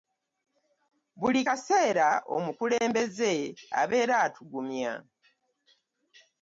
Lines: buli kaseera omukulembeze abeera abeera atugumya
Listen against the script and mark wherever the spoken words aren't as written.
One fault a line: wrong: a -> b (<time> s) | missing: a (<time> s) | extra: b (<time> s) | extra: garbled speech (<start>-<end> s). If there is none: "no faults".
missing: abeera (4.2 s)